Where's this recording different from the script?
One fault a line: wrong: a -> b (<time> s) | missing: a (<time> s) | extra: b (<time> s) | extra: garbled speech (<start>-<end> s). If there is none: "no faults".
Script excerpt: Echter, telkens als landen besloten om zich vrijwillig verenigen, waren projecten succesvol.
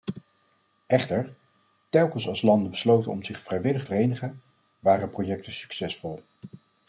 no faults